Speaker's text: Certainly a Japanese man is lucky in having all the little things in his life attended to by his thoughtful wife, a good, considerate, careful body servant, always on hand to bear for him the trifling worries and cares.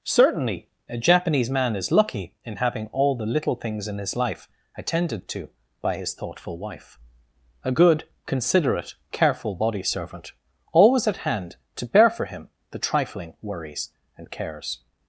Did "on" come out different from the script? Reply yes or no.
yes